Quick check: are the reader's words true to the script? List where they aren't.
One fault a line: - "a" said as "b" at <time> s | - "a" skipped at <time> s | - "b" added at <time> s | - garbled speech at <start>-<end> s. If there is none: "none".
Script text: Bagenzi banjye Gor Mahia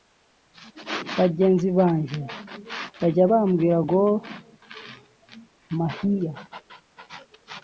- "bajya bambwira" added at 3.0 s